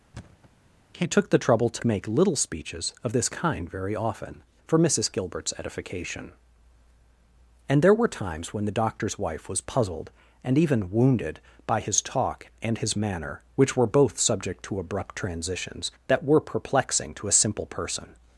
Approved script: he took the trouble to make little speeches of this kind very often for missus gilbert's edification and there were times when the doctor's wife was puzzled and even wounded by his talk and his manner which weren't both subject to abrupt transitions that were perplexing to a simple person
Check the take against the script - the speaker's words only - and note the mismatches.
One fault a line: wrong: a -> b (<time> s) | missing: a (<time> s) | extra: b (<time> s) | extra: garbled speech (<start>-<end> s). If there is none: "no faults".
wrong: weren't -> were (13.8 s)